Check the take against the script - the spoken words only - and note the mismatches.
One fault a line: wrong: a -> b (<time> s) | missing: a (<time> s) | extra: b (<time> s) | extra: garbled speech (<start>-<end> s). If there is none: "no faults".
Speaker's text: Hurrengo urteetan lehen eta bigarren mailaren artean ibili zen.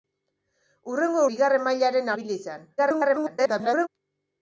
missing: urteetan lehen eta (1.2 s)
missing: artean (2.1 s)
extra: garbled speech (2.8-3.9 s)